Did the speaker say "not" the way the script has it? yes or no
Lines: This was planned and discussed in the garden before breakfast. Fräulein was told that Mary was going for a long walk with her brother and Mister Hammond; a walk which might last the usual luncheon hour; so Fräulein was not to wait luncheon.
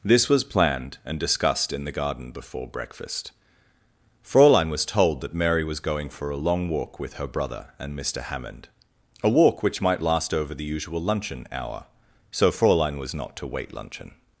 yes